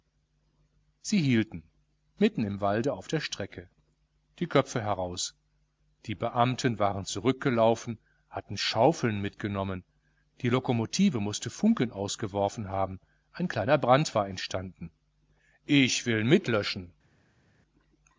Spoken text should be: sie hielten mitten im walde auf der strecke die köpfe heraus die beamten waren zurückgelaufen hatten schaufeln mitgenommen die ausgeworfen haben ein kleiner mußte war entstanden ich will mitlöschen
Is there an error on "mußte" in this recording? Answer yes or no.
yes